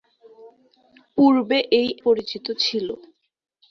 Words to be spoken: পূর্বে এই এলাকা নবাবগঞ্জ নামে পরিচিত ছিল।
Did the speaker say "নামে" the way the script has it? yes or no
no